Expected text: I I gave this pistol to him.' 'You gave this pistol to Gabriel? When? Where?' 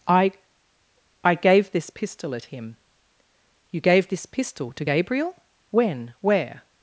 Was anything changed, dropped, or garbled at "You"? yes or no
no